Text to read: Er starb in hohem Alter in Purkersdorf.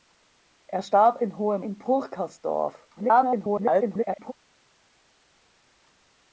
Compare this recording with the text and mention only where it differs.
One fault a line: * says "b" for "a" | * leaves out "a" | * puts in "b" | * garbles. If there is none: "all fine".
* leaves out "Alter"
* garbles